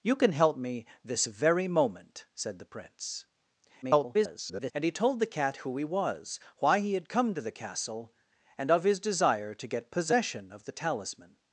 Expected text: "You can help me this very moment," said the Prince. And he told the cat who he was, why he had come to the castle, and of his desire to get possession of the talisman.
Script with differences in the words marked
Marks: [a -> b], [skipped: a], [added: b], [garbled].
"You can help me this very moment," said the Prince. [garbled] And he told the cat who he was, why he had come to the castle, and of his desire to get possession of the talisman.